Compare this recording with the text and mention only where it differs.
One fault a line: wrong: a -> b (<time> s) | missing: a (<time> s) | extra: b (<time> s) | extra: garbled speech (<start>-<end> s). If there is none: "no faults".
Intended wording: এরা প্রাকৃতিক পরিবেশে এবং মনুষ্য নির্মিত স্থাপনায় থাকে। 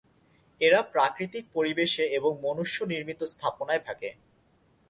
no faults